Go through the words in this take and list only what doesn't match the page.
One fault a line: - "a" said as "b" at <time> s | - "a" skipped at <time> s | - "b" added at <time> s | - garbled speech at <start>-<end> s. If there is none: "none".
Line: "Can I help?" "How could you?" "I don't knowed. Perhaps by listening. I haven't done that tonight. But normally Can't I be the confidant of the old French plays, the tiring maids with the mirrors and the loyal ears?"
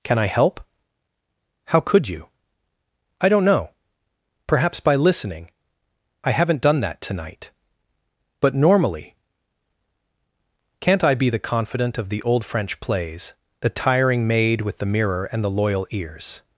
- "knowed" said as "know" at 3.5 s
- "maids" said as "maid" at 14.3 s
- "mirrors" said as "mirror" at 14.8 s